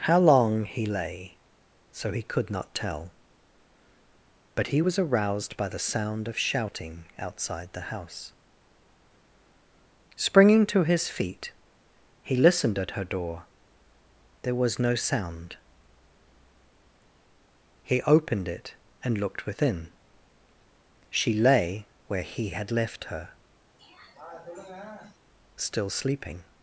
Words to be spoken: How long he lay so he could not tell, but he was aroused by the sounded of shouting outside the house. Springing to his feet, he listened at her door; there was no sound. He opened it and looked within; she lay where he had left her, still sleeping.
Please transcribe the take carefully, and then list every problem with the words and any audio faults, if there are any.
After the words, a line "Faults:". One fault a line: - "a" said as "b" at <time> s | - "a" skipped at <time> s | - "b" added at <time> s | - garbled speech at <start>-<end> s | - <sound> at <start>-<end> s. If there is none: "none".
How long he lay so he could not tell, but he was aroused by the sound of shouting outside the house. Springing to his feet, he listened at her door; there was no sound. He opened it and looked within; she lay where he had left her, still sleeping.
Faults:
- "sounded" said as "sound" at 5.9 s
- throat clearing at 23.8-25.2 s